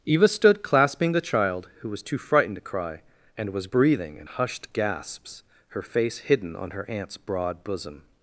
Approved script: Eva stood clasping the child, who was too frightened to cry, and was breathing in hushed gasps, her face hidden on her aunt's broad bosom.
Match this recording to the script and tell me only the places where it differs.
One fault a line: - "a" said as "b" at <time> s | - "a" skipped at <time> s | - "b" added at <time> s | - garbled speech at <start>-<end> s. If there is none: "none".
none